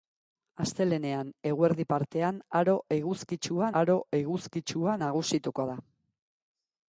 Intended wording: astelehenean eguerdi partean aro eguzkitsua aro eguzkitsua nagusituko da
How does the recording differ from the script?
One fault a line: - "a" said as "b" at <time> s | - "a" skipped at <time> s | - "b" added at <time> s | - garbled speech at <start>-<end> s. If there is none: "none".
none